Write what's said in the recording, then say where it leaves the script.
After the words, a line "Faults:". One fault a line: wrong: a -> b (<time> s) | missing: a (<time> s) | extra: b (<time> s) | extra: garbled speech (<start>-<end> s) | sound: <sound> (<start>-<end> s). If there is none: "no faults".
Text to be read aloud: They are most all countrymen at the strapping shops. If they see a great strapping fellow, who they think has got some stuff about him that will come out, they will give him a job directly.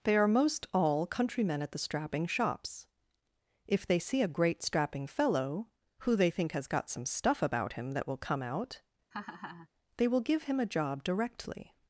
They are most all countrymen at the strapping shops. If they see a great strapping fellow, who they think has got some stuff about him that will come out, they will give him a job directly.
Faults:
sound: laugh (9.1-9.7 s)